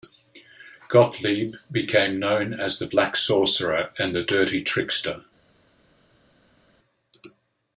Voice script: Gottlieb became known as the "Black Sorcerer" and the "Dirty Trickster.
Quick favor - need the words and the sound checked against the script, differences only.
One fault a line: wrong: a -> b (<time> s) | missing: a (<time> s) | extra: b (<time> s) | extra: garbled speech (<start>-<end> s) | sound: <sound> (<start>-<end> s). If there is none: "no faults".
no faults